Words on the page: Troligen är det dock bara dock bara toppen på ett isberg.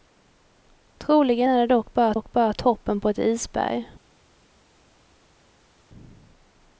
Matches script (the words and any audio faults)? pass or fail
pass